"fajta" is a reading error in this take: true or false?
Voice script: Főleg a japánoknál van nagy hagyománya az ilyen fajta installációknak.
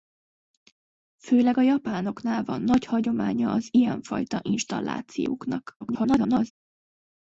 false